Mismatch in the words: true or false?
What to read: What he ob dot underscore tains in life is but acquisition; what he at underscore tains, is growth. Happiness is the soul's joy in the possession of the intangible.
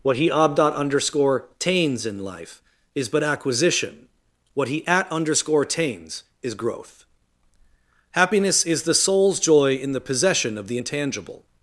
false